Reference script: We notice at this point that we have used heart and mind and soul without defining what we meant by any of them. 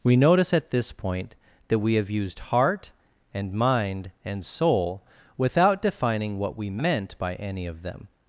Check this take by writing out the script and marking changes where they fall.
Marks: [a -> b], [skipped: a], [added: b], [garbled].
We notice at this point that we have used heart and mind and soul without defining what we meant by any of them.